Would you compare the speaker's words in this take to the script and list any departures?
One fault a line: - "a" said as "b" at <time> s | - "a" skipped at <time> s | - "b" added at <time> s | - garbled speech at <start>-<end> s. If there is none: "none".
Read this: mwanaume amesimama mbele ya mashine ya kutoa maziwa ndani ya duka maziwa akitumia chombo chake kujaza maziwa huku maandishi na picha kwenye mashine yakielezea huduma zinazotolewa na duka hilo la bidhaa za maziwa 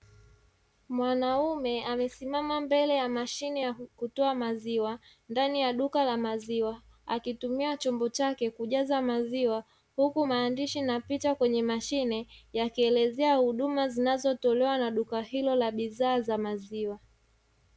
- "la" added at 6.0 s